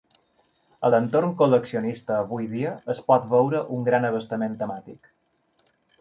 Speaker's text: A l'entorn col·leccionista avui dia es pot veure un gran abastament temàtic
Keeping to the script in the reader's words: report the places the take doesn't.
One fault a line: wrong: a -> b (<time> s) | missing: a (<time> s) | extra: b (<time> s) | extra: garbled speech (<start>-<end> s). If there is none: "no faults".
no faults